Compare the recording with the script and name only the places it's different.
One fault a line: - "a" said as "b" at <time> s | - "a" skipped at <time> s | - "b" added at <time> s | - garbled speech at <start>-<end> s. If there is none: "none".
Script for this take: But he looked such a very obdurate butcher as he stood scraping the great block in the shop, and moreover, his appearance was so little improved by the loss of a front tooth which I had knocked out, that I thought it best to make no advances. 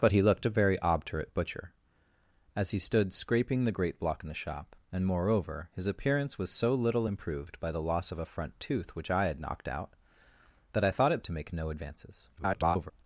- "such" skipped at 0.5 s
- "best" skipped at 11.2 s
- garbled speech at 12.4-12.9 s